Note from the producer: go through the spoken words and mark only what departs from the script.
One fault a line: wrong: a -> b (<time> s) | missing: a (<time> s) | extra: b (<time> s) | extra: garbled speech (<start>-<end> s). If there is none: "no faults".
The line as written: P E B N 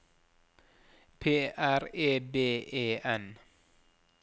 extra: R (1.6 s)
extra: E (2.7 s)